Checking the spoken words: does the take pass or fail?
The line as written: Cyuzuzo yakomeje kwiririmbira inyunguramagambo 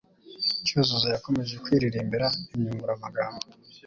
pass